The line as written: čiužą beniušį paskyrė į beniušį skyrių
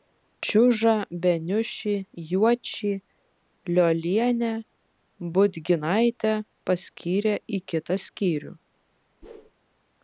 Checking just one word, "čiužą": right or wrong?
right